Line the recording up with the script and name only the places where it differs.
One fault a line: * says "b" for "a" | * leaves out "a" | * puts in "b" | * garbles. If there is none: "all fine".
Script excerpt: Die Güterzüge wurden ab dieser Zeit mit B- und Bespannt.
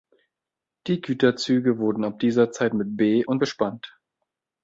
all fine